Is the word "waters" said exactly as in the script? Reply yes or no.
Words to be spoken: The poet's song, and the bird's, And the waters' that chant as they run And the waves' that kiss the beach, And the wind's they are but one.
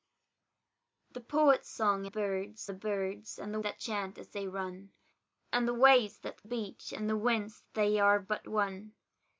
no